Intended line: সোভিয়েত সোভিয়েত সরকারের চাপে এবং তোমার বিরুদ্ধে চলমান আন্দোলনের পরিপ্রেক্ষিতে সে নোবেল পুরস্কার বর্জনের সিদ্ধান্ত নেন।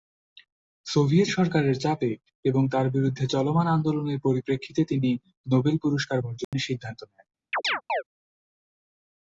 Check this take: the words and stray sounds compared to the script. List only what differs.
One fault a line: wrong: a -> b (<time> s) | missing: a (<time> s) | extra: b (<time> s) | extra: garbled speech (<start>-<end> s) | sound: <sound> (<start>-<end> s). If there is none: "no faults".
missing: সোভিয়েত (1.3 s)
wrong: তোমার -> তার (2.7 s)
wrong: সে -> তিনি (4.8 s)
sound: dropout (6.4-6.5 s)
sound: chirp (7.5-8.0 s)